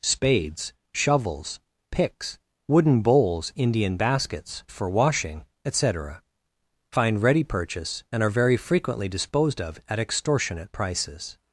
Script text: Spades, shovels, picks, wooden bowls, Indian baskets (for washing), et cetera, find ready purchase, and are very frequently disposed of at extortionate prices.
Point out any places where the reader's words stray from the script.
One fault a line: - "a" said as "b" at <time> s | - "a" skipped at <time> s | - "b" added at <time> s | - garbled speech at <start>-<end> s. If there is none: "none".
none